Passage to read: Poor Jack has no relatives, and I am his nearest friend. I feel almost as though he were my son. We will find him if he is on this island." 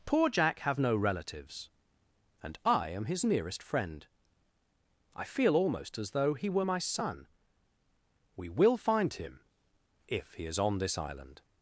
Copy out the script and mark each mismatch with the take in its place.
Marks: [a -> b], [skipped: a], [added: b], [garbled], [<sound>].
Poor Jack [has -> have] no relatives, and I am his nearest friend. I feel almost as though he were my son. We will find him if he is on this island."